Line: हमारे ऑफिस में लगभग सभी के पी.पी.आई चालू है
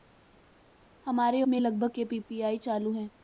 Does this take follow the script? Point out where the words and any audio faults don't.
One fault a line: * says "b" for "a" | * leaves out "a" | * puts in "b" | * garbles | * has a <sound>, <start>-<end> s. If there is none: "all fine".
* leaves out "ऑफिस"
* leaves out "सभी"